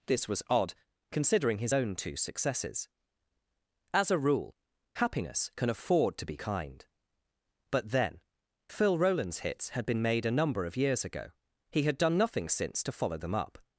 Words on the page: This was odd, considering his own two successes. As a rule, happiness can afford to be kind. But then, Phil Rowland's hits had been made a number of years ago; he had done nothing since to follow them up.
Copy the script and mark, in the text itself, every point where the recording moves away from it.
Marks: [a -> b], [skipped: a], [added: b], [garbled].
This was odd, considering his own two successes. As a rule, happiness can afford to be kind. But then, Phil Rowland's hits had been made a number of years ago; he had done nothing since to follow them up.